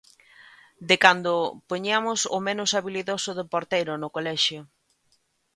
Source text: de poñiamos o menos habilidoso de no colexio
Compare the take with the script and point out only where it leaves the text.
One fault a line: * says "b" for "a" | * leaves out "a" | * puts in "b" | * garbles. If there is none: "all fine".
* puts in "cando"
* puts in "porteiro"